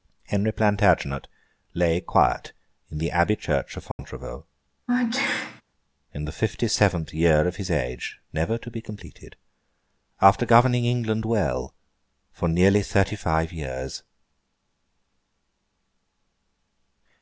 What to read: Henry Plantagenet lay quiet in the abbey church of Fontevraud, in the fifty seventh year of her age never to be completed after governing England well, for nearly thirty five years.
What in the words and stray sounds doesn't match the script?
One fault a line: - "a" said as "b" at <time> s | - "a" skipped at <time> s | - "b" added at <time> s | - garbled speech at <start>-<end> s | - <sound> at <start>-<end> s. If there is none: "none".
- dropout at 3.9-4.0 s
- sneeze at 4.9-5.6 s
- "her" said as "his" at 7.5 s